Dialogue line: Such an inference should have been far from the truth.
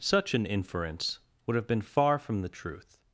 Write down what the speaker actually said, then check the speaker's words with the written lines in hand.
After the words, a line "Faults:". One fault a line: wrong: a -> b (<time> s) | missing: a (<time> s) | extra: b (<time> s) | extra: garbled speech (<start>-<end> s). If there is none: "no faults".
Such an inference would have been far from the truth.
Faults:
wrong: should -> would (1.4 s)